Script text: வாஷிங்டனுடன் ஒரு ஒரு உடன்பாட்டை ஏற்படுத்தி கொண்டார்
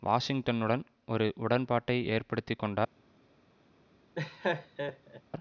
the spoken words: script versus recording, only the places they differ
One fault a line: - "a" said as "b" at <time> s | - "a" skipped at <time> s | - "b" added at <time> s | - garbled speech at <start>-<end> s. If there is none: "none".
- "ஒரு" skipped at 1.2 s